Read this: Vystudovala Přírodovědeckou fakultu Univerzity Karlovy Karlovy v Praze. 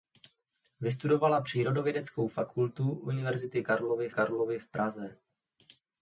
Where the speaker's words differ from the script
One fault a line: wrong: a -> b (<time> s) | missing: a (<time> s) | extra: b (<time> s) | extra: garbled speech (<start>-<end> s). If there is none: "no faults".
no faults